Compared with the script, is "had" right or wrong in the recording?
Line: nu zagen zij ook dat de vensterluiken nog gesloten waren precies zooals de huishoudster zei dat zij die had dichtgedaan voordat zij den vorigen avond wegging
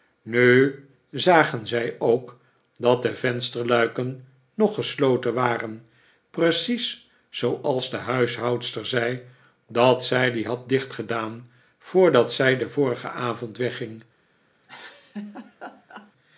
right